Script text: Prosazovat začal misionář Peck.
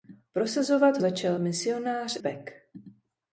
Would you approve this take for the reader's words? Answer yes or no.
yes